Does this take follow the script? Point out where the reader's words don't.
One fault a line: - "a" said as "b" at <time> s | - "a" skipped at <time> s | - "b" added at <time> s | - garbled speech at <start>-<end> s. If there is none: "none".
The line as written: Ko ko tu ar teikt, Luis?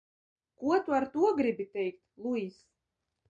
- "ko" skipped at 0.8 s
- "to gribi" added at 1.1 s